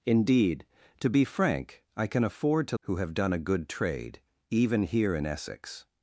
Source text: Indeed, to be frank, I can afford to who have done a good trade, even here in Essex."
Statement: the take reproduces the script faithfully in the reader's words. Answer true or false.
true